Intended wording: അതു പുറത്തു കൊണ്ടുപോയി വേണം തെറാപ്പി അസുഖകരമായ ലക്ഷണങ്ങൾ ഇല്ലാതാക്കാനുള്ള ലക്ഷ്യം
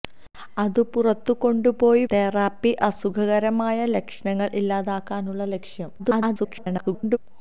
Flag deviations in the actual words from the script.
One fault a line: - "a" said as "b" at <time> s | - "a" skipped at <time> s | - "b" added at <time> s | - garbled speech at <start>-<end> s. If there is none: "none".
- "വേണം" skipped at 2.0 s
- garbled speech at 6.0-7.2 s